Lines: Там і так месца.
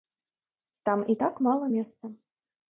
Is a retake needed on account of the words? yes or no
yes